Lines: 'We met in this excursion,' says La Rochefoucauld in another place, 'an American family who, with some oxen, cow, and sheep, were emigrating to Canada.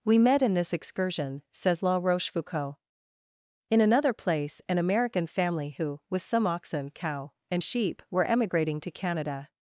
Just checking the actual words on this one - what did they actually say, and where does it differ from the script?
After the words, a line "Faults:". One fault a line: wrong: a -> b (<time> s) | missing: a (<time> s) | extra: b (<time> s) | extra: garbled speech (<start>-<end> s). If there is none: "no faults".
'We met in this excursion,' says La Rochefoucauld in another place, 'an American family who, with some oxen, cow, and sheep, were emigrating to Canada.
Faults:
no faults